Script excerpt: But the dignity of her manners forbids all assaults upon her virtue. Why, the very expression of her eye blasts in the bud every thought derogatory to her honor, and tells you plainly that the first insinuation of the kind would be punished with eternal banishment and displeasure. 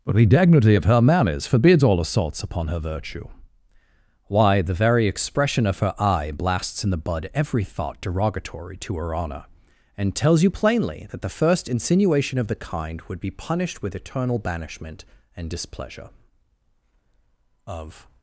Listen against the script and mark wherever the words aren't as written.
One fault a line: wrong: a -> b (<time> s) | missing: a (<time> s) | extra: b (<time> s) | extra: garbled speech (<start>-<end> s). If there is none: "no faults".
extra: Of (17.7 s)